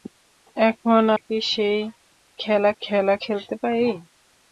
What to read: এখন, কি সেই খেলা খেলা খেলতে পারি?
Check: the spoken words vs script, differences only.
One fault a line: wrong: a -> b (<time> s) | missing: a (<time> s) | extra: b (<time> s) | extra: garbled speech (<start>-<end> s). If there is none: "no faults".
no faults